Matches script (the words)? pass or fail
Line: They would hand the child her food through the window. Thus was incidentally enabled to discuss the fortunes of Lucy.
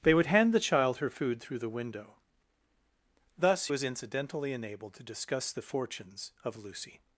pass